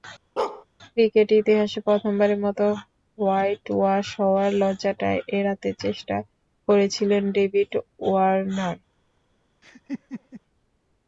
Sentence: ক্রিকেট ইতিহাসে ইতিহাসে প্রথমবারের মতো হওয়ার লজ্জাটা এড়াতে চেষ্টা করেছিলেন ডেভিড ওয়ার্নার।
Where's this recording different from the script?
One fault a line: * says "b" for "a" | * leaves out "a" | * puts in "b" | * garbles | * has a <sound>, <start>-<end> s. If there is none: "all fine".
* has a bark, 0.4-0.7 s
* leaves out "ইতিহাসে"
* puts in "হোয়াইটওয়াশ"
* has a laugh, 9.6-10.4 s